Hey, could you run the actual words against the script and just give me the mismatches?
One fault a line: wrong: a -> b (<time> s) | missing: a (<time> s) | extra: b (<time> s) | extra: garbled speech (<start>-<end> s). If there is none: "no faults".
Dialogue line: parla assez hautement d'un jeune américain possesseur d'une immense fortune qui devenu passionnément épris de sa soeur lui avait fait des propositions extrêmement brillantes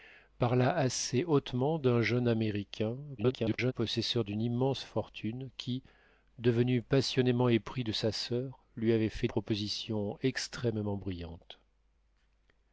extra: garbled speech (3.2-3.7 s)
missing: des (9.3 s)